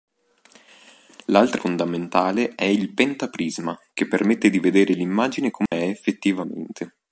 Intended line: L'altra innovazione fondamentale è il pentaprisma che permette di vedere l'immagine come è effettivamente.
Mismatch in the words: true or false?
true